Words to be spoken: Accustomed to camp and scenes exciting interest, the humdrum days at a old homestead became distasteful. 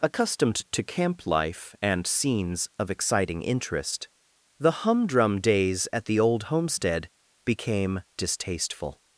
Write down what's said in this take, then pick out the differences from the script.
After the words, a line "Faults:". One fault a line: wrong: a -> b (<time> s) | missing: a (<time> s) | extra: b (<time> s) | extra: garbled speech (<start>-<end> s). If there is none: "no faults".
Accustomed to camp life and scenes of exciting interest, the humdrum days at the old homestead became distasteful.
Faults:
extra: life (1.3 s)
extra: of (2.8 s)
wrong: a -> the (6.1 s)